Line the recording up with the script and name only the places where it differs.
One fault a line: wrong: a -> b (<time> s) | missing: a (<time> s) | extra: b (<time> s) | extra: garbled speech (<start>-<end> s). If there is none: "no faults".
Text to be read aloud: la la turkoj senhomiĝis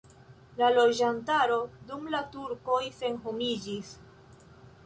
extra: loĝantaro dum (0.8 s)